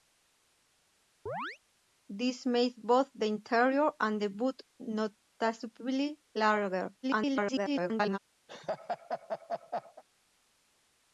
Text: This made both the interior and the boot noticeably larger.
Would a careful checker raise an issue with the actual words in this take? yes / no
yes